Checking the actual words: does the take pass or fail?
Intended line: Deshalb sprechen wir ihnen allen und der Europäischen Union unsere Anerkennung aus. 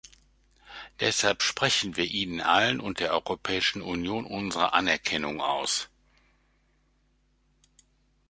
pass